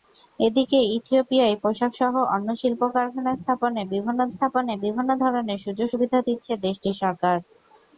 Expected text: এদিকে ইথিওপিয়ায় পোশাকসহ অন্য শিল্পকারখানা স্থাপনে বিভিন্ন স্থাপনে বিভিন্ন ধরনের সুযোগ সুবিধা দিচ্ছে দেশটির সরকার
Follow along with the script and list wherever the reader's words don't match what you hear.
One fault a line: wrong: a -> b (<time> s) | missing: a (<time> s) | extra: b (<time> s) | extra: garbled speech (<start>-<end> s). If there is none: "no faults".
no faults